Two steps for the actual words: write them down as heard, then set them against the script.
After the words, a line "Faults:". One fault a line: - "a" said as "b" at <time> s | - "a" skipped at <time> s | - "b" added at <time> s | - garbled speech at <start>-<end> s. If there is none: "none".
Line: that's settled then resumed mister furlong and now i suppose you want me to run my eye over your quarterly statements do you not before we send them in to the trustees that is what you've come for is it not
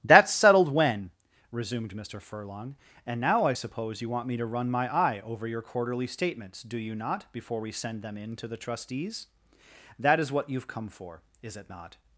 that's settled when resumed mister furlong and now i suppose you want me to run my eye over your quarterly statements do you not before we send them in to the trustees that is what you've come for is it not
Faults:
- "then" said as "when" at 0.7 s